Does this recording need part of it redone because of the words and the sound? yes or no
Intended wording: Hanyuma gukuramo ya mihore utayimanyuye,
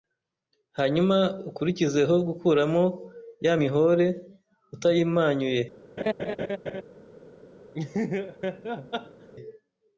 yes